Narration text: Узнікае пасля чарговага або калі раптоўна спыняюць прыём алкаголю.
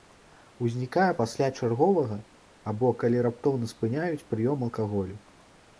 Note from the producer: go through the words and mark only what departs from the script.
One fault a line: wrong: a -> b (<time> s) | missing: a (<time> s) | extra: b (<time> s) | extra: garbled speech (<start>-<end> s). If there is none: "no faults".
no faults